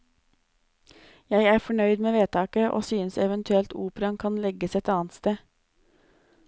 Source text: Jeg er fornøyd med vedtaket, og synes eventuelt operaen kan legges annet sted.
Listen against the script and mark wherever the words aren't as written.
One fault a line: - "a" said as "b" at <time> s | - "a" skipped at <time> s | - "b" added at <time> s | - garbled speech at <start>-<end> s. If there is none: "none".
- "et" added at 4.7 s